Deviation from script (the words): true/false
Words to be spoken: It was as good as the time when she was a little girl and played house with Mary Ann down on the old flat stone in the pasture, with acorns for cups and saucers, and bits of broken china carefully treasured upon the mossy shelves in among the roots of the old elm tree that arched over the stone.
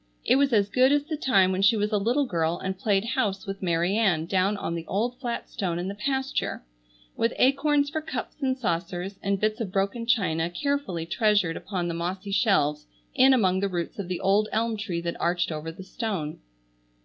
false